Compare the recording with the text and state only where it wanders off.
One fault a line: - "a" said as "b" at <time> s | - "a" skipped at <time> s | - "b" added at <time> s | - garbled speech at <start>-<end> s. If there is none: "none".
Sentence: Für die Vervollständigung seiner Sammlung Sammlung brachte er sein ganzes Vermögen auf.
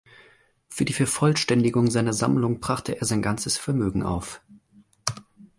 - "Sammlung" skipped at 2.6 s